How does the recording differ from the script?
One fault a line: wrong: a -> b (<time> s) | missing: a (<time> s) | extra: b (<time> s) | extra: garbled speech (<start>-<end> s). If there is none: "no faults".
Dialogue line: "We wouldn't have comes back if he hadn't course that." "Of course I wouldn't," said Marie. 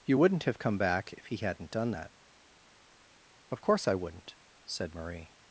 wrong: We -> You (0.1 s)
wrong: comes -> come (0.6 s)
wrong: course -> done (1.7 s)